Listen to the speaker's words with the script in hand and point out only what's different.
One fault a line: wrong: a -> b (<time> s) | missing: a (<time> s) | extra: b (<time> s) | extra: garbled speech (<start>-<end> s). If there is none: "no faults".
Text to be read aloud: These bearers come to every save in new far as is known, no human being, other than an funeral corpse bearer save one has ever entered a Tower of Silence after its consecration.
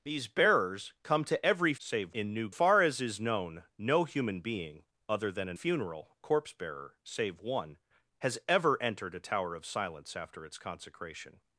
no faults